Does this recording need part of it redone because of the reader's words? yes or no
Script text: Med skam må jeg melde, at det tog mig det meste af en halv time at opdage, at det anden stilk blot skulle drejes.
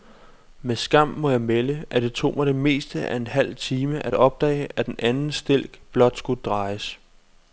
yes